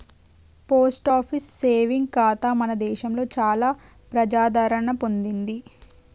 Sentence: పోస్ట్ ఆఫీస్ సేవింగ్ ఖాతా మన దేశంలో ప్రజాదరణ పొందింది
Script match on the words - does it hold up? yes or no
no